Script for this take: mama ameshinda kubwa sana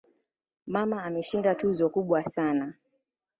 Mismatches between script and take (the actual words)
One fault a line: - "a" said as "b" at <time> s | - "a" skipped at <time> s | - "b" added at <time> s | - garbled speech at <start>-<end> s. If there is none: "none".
- "tuzo" added at 1.5 s